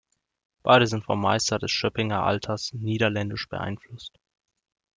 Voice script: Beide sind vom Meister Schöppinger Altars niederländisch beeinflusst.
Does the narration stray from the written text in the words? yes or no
yes